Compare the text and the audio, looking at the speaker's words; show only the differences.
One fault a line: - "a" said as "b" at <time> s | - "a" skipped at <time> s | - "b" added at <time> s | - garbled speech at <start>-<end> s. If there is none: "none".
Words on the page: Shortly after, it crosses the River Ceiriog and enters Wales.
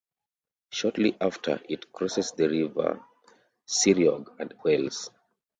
- "enters" skipped at 4.5 s